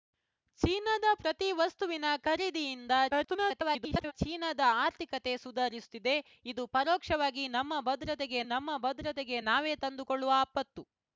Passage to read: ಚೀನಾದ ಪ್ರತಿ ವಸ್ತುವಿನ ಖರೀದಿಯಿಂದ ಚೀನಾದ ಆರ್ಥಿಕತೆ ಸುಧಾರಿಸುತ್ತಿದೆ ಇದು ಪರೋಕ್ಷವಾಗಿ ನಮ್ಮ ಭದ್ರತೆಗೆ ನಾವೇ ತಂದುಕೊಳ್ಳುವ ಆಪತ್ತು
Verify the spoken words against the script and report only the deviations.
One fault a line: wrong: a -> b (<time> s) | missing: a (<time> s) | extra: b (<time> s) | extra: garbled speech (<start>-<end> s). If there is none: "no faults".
extra: garbled speech (3.1-4.1 s)
extra: ನಮ್ಮ ಭದ್ರತೆಗೆ (8.5 s)